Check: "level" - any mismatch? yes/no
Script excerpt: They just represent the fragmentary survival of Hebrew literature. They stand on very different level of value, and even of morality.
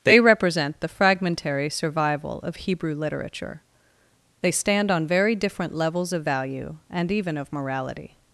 yes